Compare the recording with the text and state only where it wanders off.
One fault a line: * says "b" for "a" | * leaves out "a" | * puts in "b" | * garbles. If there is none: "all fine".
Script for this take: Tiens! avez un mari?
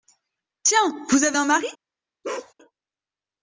* puts in "vous"